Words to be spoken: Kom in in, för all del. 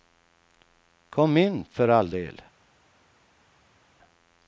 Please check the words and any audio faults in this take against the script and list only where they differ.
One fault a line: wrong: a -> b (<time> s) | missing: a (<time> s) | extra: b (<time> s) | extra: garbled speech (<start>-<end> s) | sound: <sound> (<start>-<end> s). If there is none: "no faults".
missing: in (1.6 s)